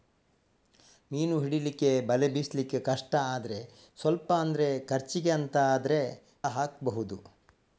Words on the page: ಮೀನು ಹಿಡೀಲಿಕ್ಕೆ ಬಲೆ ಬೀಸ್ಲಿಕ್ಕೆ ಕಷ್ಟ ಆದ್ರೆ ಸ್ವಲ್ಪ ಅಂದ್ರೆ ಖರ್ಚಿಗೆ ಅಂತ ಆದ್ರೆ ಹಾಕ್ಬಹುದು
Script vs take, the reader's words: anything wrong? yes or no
no